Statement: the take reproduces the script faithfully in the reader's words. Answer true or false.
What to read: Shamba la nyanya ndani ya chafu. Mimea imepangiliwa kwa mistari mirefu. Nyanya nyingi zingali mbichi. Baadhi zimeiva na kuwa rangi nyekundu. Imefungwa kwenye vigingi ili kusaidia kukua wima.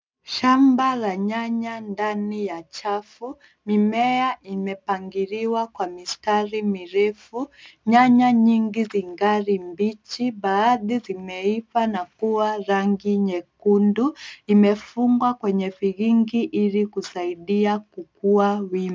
true